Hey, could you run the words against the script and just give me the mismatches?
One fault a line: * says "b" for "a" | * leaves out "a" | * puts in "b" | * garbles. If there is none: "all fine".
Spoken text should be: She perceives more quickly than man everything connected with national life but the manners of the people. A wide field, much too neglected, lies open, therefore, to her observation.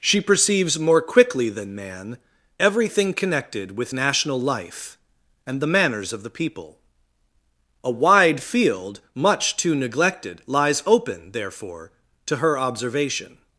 * says "and" for "but"